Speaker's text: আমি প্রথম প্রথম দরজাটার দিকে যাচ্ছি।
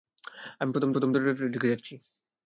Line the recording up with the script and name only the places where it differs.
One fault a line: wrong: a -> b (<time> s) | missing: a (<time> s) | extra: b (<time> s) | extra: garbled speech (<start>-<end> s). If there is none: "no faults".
no faults